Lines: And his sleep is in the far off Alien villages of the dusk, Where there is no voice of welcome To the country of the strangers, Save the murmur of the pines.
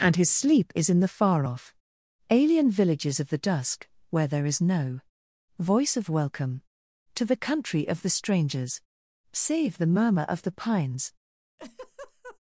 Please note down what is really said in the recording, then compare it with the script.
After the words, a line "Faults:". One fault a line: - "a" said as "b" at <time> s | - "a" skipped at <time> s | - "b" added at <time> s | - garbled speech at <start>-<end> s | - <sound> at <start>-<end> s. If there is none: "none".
And his sleep is in the far off Alien villages of the dusk, Where there is no voice of welcome To the country of the strangers, Save the murmur of the pines.
Faults:
- laugh at 11.6-12.4 s